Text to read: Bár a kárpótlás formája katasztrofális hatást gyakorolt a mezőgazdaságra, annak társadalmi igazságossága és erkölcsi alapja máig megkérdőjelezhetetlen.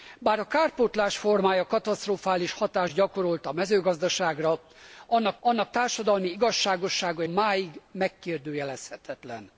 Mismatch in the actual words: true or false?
true